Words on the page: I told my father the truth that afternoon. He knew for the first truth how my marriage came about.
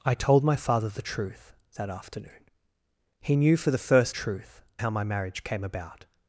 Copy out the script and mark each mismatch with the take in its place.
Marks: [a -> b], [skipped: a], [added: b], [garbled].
I told my father the truth that afternoon. He knew for the first truth how my marriage came about.